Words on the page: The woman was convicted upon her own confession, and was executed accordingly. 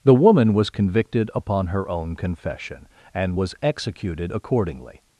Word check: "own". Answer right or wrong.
right